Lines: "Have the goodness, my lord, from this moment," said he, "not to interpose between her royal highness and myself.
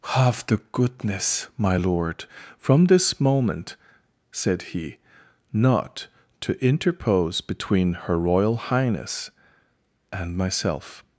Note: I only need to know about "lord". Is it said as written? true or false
true